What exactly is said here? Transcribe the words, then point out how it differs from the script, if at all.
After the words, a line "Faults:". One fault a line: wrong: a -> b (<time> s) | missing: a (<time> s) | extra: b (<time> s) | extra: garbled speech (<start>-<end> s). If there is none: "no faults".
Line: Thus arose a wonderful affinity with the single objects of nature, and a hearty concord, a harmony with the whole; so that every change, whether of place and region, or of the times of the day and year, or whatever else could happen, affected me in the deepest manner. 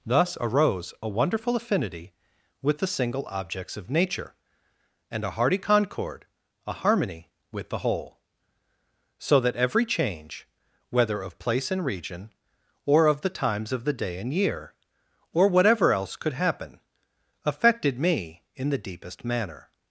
Thus arose a wonderful affinity with the single objects of nature, and a hearty concord, a harmony with the whole; so that every change, whether of place and region, or of the times of the day and year, or whatever else could happen, affected me in the deepest manner.
Faults:
no faults